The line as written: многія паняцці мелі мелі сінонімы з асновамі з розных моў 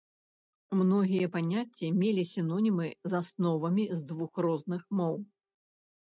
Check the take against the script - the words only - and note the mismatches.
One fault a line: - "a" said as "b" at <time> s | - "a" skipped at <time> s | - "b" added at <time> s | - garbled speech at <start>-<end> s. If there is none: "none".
- "мелі" skipped at 2.2 s
- "двух" added at 4.1 s